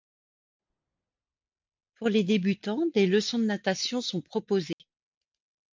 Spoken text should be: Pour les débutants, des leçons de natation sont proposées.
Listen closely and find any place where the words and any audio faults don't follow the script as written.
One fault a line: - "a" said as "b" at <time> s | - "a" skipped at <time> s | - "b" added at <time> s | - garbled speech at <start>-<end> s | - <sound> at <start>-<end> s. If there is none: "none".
- dropout at 4.7-4.8 s